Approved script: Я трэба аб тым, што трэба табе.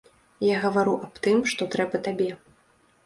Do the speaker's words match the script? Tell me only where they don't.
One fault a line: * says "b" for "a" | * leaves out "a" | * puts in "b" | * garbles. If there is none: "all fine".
* says "гавару" for "трэба"